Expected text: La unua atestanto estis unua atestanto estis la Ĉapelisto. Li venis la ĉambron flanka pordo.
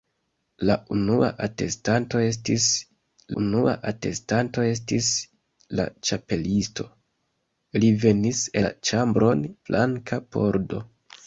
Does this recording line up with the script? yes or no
yes